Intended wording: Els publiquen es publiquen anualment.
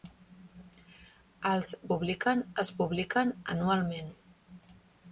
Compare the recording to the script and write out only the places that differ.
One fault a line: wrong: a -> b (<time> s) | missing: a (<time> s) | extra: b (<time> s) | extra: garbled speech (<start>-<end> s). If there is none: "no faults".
no faults